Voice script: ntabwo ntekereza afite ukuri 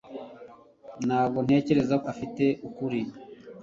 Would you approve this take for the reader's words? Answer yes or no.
yes